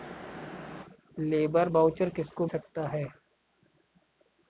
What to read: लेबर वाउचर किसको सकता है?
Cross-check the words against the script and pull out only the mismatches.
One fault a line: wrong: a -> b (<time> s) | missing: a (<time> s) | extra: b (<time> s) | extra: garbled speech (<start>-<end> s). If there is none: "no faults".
no faults